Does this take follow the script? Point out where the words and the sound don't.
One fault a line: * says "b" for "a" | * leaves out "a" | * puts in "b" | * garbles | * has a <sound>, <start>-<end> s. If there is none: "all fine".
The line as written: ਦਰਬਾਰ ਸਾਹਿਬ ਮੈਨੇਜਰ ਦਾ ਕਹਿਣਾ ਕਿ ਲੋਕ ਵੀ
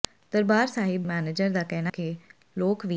all fine